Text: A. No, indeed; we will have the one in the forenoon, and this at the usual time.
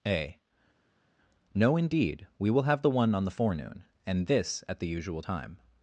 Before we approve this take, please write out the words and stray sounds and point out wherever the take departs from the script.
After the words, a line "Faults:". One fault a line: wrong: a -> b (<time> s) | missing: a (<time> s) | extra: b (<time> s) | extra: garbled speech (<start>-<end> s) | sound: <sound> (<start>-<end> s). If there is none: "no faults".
A. No, indeed; we will have the one on the forenoon, and this at the usual time.
Faults:
wrong: in -> on (3.1 s)